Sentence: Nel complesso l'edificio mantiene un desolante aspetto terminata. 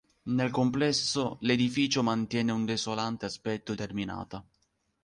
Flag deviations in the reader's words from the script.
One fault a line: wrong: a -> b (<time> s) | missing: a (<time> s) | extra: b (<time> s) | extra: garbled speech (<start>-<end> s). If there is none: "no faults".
no faults